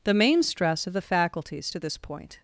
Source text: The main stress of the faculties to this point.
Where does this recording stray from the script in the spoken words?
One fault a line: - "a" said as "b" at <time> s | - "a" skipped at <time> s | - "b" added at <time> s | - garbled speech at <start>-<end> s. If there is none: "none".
none